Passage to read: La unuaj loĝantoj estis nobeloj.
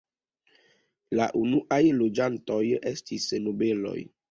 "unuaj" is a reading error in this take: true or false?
false